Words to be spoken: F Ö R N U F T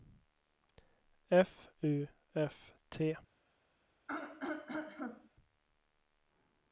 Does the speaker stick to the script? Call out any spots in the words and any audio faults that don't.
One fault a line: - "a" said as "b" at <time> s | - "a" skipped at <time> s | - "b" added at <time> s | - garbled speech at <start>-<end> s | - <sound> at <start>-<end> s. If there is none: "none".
- "Ö R N" skipped at 1.7 s
- throat clearing at 4.1-5.3 s